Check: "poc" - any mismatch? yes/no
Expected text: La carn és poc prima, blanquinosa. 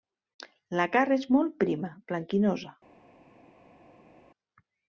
yes